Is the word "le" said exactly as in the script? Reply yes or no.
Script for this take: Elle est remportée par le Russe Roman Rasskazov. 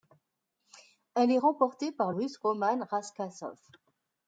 no